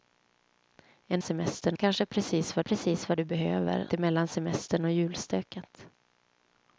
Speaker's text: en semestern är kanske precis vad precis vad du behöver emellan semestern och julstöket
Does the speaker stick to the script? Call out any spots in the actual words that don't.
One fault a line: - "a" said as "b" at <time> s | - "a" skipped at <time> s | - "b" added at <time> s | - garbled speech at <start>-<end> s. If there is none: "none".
none